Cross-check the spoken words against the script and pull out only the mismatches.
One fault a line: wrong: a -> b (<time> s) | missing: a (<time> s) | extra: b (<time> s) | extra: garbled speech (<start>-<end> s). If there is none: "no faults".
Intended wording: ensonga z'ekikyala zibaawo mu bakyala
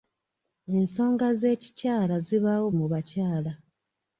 no faults